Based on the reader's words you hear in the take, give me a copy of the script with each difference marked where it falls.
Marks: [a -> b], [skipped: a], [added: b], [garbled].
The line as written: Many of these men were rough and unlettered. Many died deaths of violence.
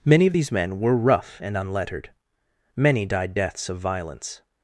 Many of these men were rough and unlettered. Many died deaths of violence.